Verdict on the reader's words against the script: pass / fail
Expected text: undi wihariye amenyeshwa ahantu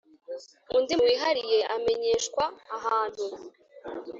pass